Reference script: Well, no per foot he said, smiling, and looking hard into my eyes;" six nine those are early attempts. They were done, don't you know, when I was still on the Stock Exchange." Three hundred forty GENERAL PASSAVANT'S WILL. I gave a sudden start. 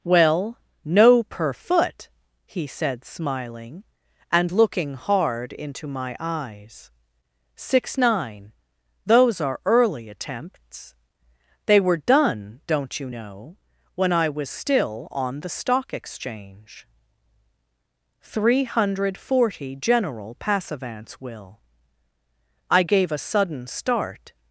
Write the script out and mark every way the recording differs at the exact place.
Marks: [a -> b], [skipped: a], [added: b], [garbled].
Well, no per foot he said, smiling, and looking hard into my eyes;" six nine those are early attempts. They were done, don't you know, when I was still on the Stock Exchange." Three hundred forty GENERAL PASSAVANT'S WILL. I gave a sudden start.